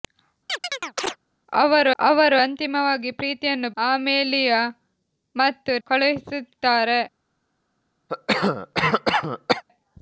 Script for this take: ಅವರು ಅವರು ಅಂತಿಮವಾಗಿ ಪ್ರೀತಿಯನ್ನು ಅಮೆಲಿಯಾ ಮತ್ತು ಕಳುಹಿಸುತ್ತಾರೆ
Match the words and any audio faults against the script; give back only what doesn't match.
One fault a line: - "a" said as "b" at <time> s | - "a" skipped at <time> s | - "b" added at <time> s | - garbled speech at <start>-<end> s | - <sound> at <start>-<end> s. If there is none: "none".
- chirp at 0.5-1.2 s
- cough at 8.1-9.6 s